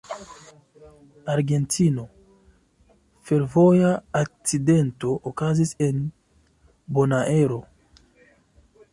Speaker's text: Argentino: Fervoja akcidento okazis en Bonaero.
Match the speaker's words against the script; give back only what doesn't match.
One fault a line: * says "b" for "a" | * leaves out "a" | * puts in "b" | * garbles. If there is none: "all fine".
all fine